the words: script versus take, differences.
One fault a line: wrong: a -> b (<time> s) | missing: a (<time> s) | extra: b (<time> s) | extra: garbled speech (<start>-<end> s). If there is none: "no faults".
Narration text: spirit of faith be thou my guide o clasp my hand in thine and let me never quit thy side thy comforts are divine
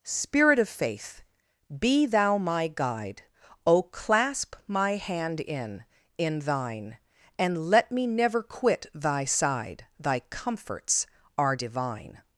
extra: in (6.2 s)